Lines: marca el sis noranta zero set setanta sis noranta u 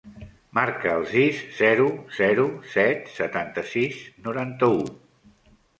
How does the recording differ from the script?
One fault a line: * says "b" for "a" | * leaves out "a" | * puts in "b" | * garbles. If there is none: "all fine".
* says "zero" for "noranta"